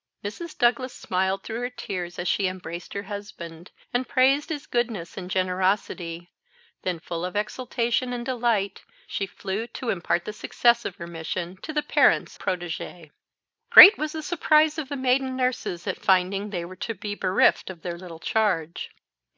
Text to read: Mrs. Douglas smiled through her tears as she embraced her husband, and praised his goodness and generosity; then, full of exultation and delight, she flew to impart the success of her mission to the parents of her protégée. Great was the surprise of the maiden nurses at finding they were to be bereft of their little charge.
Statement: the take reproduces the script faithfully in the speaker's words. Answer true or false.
false